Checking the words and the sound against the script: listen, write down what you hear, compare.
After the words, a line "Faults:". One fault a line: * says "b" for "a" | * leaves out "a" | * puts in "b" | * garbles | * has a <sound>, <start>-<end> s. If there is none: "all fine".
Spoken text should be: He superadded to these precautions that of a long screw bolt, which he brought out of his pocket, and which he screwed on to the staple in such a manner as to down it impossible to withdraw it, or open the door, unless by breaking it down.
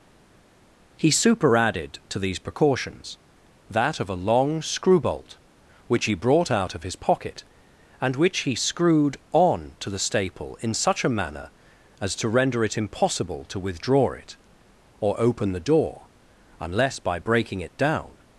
He superadded to these precautions that of a long screw bolt, which he brought out of his pocket, and which he screwed on to the staple in such a manner as to render it impossible to withdraw it, or open the door, unless by breaking it down.
Faults:
* says "render" for "down"